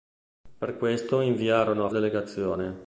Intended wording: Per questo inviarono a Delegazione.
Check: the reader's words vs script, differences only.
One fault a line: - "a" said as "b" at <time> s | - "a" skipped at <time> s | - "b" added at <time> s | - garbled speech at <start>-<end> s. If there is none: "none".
none